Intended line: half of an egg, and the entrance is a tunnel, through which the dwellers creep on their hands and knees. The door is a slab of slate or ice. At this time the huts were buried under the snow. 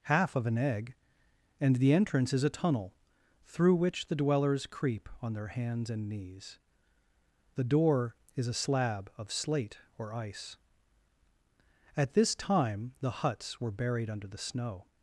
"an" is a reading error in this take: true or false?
false